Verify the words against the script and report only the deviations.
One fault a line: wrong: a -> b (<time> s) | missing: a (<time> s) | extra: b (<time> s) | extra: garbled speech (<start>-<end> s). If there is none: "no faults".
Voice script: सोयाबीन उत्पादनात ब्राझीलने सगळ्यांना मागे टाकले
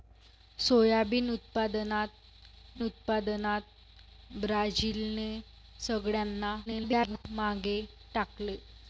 extra: उत्पादनात (2.8 s)
extra: garbled speech (6.7-7.2 s)